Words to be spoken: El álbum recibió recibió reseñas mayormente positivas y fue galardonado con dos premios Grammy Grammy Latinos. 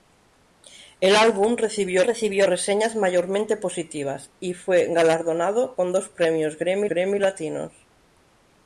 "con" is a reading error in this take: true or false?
false